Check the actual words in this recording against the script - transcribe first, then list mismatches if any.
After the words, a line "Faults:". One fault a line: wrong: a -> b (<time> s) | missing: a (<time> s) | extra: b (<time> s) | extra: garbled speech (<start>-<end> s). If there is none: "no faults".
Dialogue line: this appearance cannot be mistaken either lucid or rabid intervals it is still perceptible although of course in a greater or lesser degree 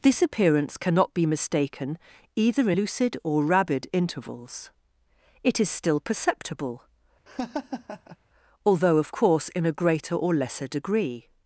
this appearance cannot be mistaken either lucid or rabid intervals it is still perceptible although of course in a greater or lesser degree
Faults:
no faults